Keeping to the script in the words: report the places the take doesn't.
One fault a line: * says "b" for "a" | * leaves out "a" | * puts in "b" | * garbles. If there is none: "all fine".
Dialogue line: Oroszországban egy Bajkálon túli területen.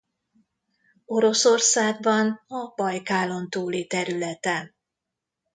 * says "a" for "egy"